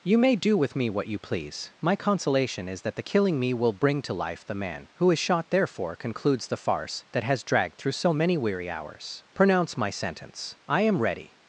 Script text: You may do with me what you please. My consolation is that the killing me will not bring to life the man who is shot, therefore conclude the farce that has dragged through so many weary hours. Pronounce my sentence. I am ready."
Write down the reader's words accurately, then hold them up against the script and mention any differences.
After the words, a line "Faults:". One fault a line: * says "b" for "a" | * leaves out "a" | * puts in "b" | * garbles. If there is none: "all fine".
You may do with me what you please. My consolation is that the killing me will bring to life the man who is shot, therefore concludes the farce that has dragged through so many weary hours. Pronounce my sentence. I am ready."
Faults:
* leaves out "not"
* says "concludes" for "conclude"